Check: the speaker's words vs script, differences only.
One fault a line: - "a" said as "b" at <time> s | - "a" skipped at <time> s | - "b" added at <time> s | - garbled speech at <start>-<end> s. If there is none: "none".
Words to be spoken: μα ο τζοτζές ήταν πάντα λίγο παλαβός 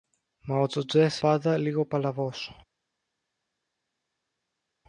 - "ήταν" skipped at 1.2 s